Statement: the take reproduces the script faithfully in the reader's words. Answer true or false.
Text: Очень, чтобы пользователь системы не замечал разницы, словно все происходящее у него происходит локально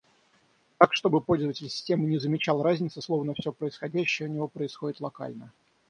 false